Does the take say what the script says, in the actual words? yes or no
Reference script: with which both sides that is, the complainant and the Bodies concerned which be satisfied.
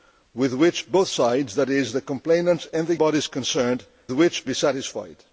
yes